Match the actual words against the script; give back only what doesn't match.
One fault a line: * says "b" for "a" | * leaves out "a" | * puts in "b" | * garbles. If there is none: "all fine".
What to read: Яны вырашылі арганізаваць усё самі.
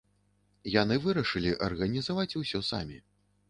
all fine